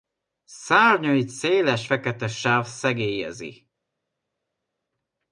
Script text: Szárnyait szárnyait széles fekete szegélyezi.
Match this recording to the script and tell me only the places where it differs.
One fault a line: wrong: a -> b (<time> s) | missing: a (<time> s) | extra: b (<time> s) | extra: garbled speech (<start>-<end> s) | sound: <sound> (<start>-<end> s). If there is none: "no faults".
missing: szárnyait (1.3 s)
extra: sáv (2.3 s)